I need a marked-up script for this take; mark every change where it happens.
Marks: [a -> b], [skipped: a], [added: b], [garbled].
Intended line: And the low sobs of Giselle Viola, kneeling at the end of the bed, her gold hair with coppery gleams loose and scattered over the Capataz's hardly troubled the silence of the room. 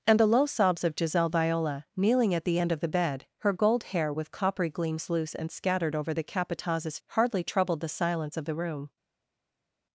And the low sobs of Giselle Viola, kneeling at the end of the bed, her gold hair with coppery gleams loose and scattered over the Capataz's hardly troubled the silence of the room.